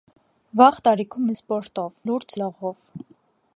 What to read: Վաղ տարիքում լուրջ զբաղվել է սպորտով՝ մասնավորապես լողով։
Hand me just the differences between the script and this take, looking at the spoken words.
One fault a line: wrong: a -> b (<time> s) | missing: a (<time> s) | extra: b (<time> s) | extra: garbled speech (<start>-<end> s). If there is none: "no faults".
missing: լուրջ զբաղվել (1.3 s)
wrong: մասնավորապես -> լուրջ (2.1 s)